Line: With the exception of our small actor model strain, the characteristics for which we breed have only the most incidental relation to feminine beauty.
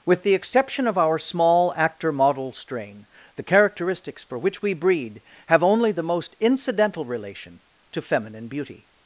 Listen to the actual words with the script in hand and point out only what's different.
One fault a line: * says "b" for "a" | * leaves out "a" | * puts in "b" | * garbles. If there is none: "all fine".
all fine